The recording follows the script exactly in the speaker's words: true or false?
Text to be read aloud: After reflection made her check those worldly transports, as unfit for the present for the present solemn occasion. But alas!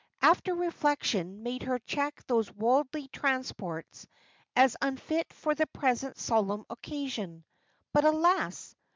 false